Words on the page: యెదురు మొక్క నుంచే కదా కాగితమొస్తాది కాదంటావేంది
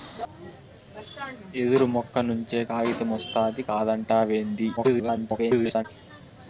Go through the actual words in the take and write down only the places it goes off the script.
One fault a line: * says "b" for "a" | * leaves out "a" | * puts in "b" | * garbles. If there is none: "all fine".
* leaves out "కదా"
* garbles